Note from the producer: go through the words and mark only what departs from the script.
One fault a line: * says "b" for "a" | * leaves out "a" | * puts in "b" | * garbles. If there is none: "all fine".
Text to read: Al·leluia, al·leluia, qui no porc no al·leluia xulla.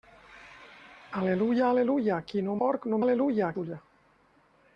all fine